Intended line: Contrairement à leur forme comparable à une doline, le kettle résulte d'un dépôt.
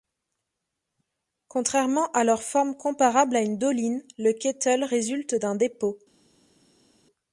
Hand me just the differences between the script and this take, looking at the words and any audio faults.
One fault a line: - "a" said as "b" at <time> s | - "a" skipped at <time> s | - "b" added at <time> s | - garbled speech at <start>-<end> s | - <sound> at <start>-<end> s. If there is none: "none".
none